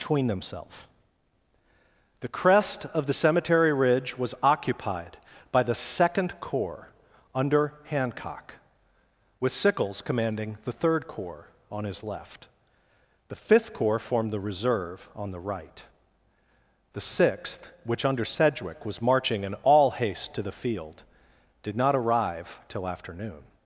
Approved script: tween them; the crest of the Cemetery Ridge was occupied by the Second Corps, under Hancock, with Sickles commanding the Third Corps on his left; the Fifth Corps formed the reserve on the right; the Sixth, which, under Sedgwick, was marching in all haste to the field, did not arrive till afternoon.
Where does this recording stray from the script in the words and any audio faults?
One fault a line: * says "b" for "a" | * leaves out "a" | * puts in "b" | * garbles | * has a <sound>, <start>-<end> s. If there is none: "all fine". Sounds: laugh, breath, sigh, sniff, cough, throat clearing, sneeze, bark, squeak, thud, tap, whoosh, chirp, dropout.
* says "between themselves" for "tween them"